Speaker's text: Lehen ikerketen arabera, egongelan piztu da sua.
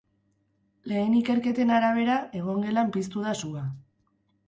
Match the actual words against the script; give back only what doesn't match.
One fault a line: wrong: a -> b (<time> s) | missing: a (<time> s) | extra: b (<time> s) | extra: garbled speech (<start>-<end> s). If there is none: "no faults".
no faults